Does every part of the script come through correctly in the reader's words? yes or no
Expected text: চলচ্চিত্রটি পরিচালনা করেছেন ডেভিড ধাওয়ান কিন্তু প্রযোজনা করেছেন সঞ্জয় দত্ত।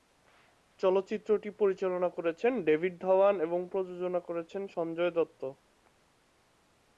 no